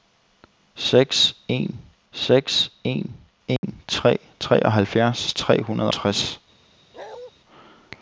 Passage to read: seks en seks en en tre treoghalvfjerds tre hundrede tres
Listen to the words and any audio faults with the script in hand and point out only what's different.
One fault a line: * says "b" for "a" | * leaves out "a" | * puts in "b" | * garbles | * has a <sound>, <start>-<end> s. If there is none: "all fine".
* has a dropout, 3.6-3.6 s
* has a bark, 6.9-7.3 s